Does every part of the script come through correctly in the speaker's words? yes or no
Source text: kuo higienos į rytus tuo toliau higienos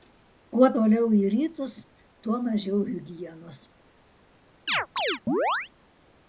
no